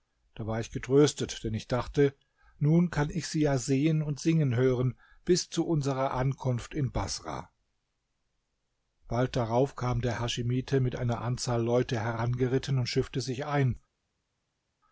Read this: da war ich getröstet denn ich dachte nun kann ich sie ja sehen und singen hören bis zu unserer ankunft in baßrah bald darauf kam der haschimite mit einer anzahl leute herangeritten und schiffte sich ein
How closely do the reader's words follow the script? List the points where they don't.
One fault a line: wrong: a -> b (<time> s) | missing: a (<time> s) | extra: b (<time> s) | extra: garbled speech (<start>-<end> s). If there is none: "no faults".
no faults